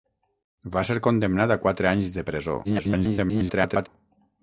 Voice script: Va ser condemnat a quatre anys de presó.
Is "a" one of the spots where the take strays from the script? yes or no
no